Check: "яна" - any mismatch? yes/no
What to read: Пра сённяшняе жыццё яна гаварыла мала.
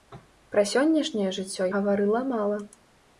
yes